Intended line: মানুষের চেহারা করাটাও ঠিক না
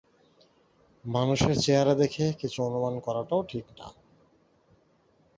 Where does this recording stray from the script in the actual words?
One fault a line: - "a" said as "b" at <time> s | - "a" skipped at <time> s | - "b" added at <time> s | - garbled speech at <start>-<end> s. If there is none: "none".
- "দেখে কিছু অনুমান" added at 1.9 s